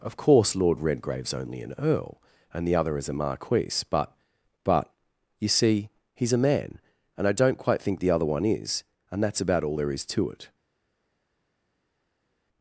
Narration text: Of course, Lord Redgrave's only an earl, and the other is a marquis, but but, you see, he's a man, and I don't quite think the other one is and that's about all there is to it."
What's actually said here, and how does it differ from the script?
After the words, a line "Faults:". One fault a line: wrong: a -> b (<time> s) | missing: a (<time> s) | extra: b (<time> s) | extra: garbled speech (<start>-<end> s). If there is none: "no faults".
Of course, Lord Redgrave's only an earl, and the other is a marquis, but but, you see, he's a man, and I don't quite think the other one is and that's about all there is to it."
Faults:
no faults